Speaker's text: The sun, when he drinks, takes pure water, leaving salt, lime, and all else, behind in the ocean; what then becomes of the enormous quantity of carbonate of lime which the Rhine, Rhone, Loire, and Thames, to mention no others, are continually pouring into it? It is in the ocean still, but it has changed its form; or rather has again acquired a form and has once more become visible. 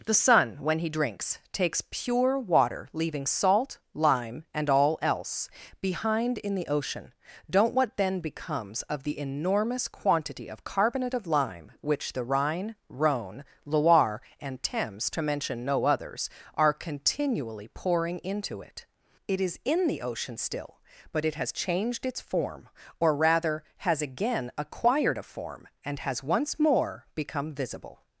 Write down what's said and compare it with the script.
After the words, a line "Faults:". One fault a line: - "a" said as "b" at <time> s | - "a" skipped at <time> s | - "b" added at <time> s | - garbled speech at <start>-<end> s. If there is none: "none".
The sun, when he drinks, takes pure water, leaving salt, lime, and all else, behind in the ocean; don't what then becomes of the enormous quantity of carbonate of lime which the Rhine, Rhone, Loire, and Thames, to mention no others, are continually pouring into it? It is in the ocean still, but it has changed its form; or rather has again acquired a form and has once more become visible.
Faults:
- "don't" added at 7.5 s